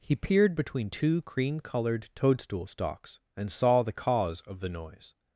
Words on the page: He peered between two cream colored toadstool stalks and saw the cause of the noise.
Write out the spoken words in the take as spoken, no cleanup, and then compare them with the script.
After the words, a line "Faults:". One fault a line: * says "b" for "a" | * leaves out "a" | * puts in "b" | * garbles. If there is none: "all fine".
He peered between two cream colored toadstool stalks and saw the cause of the noise.
Faults:
all fine